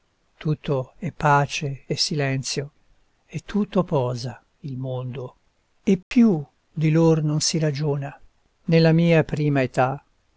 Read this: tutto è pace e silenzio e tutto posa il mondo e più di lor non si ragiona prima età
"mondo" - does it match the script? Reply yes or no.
yes